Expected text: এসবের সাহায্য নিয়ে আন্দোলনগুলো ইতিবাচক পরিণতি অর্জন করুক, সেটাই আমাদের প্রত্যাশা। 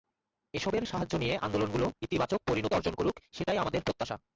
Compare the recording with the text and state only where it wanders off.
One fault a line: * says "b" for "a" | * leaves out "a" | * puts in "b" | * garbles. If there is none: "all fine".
all fine